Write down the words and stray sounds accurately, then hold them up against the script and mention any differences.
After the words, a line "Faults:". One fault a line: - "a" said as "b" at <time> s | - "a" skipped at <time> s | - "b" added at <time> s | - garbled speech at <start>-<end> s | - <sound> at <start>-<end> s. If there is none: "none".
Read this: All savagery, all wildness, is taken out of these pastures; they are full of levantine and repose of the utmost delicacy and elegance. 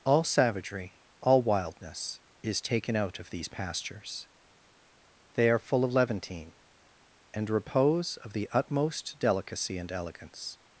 All savagery, all wildness, is taken out of these pastures; they are full of levantine and repose of the utmost delicacy and elegance.
Faults:
none